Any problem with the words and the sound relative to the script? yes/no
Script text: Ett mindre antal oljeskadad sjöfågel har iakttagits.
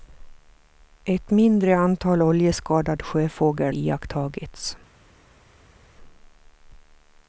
yes